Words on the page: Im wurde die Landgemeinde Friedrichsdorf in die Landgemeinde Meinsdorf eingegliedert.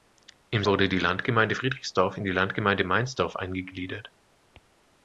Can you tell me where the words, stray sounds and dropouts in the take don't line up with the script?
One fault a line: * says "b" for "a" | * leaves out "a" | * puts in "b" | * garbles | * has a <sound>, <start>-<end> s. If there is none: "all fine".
all fine